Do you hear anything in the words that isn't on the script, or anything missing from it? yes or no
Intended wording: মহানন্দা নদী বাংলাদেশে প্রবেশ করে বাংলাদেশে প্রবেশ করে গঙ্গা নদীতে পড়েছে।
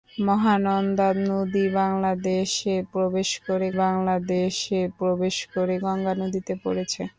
no